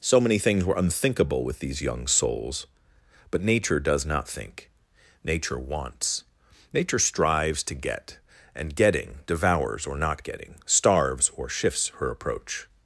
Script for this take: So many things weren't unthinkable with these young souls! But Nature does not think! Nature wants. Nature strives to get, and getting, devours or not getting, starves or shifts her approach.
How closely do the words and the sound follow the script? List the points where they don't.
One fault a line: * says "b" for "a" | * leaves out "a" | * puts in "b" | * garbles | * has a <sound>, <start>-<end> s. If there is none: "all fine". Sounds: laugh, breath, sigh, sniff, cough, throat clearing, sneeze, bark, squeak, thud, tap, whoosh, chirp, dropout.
* says "were" for "weren't"